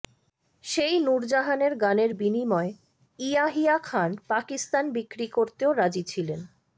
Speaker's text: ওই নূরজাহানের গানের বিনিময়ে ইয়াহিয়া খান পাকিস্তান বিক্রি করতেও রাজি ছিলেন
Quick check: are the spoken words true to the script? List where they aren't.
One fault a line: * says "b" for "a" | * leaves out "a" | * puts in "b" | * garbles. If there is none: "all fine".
* says "সেই" for "ওই"